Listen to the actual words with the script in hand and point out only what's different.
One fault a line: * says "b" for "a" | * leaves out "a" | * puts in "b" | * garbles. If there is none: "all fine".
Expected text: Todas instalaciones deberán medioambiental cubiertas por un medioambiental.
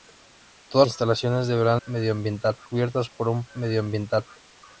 all fine